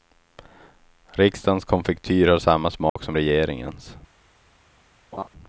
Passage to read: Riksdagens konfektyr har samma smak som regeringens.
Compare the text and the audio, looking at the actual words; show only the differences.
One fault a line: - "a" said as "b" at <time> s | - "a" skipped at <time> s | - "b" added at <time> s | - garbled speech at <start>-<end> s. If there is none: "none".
none